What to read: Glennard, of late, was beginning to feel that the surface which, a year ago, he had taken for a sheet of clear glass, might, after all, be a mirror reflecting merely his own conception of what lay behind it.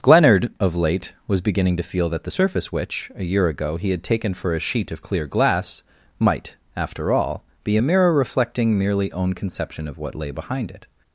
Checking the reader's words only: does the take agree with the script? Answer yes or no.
no